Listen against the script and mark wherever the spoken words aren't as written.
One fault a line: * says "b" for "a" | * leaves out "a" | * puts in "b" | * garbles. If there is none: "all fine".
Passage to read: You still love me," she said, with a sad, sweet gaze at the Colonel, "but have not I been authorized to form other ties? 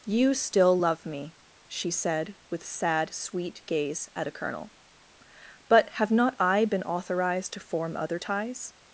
* leaves out "a"
* says "a" for "the"